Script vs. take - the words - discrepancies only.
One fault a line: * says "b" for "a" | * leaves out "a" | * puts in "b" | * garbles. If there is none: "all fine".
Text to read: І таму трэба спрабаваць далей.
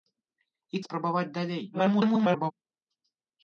* leaves out "таму трэба"
* garbles